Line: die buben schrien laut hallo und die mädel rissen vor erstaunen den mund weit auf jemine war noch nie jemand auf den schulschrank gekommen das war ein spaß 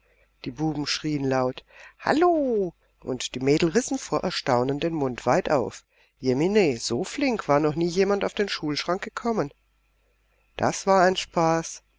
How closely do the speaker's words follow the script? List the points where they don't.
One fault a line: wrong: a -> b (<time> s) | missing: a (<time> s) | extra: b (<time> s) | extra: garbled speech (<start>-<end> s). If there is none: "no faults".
extra: so flink (6.8 s)